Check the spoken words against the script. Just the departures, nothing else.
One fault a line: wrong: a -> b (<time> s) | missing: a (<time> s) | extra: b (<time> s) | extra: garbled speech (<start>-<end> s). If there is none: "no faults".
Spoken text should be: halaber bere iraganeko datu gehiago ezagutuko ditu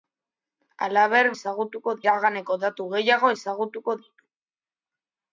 wrong: bere -> ezagutuko (1.4 s)